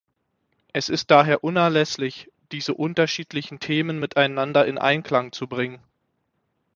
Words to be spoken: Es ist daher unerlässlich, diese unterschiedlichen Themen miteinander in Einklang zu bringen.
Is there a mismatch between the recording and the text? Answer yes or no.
no